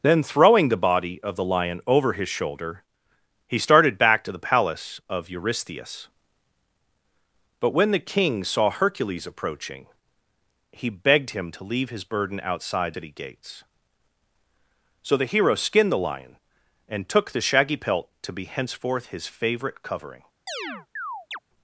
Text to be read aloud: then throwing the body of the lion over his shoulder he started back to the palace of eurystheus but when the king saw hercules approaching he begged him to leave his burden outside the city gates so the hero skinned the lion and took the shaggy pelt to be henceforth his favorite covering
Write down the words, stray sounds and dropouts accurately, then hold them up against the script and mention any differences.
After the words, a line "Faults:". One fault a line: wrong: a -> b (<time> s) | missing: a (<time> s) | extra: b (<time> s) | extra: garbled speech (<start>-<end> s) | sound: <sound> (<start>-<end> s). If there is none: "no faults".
then throwing the body of the lion over his shoulder he started back to the palace of eurystheus but when the king saw hercules approaching he begged him to leave his burden outside city gates so the hero skinned the lion and took the shaggy pelt to be henceforth his favorite covering
Faults:
missing: the (12.9 s)
sound: chirp (20.5-21.4 s)